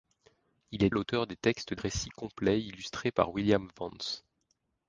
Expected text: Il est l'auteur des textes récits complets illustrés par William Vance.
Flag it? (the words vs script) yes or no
no